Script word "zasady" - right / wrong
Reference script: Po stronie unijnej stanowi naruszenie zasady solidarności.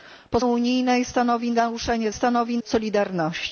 wrong